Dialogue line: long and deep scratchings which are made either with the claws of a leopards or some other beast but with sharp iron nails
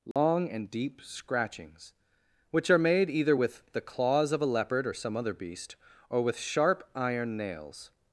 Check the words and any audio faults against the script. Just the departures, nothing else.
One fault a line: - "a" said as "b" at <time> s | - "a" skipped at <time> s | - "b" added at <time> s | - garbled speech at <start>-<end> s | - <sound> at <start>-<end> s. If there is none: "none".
- dropout at 0.1-0.2 s
- "leopards" said as "leopard" at 4.5 s
- "but" said as "or" at 6.1 s